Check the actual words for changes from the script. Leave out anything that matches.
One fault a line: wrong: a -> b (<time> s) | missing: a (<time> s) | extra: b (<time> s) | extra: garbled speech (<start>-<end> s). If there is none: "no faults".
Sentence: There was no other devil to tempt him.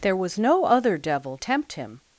missing: to (1.4 s)